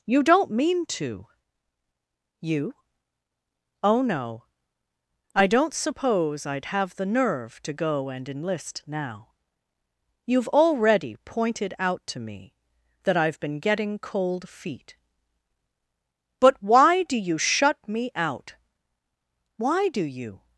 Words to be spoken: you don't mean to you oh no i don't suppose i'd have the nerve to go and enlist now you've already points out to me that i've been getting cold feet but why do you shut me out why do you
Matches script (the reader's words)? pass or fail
fail